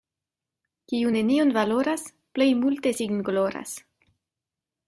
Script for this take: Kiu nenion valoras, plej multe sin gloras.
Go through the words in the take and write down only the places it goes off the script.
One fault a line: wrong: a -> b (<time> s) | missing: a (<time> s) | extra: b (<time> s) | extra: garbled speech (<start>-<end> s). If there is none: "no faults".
no faults